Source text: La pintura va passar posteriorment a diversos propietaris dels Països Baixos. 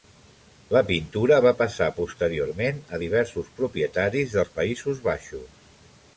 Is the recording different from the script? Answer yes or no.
no